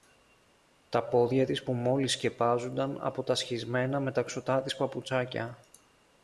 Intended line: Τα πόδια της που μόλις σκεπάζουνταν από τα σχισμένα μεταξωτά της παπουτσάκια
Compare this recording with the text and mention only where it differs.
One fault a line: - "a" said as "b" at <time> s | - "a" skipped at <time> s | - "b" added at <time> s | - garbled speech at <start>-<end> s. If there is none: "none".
none